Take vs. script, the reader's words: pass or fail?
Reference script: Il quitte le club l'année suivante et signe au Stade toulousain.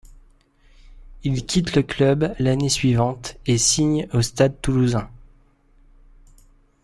pass